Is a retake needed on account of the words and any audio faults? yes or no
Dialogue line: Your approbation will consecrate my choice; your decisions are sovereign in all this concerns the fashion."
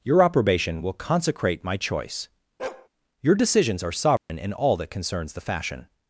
yes